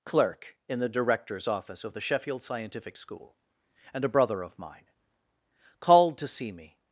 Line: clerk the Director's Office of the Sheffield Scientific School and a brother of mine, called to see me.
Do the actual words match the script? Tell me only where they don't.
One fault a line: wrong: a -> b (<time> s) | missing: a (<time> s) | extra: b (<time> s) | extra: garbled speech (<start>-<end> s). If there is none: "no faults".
extra: in (0.7 s)